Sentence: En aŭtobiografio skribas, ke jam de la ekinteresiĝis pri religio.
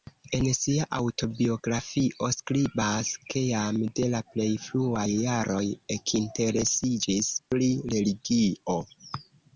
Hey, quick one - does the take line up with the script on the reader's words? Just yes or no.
no